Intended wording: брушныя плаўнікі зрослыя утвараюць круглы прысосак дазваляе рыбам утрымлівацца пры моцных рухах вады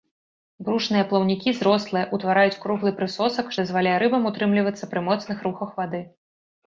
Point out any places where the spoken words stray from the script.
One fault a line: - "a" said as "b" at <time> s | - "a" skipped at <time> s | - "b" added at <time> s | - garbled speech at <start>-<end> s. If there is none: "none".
none